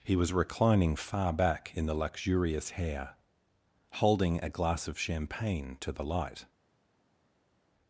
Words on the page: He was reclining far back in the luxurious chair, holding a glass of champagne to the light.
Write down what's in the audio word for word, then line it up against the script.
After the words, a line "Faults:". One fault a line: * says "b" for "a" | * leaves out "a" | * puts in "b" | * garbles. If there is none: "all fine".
He was reclining far back in the luxurious hair, holding a glass of champagne to the light.
Faults:
* says "hair" for "chair"